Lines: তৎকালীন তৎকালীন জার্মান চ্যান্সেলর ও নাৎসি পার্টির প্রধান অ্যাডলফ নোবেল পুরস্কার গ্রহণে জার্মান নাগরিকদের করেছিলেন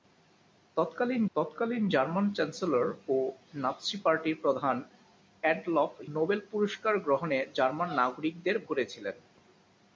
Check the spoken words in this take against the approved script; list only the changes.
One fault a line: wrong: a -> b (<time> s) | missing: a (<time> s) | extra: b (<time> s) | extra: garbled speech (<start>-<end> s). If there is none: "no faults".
no faults